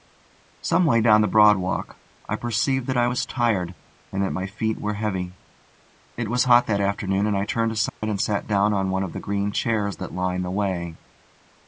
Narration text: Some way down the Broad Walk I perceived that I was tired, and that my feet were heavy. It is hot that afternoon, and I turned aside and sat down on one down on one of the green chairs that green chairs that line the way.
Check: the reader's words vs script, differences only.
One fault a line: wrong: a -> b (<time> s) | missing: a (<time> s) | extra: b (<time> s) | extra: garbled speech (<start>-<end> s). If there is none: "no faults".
wrong: is -> was (6.3 s)
missing: down on one (9.0 s)
missing: green chairs that (10.1 s)